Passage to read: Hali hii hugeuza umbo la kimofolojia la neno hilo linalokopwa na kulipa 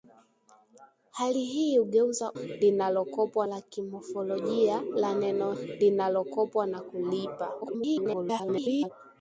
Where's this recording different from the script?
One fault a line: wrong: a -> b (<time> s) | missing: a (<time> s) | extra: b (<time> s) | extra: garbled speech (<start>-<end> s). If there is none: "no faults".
wrong: umbo -> linalokopwa (2.3 s)
missing: hilo (5.5 s)
extra: garbled speech (7.6-8.9 s)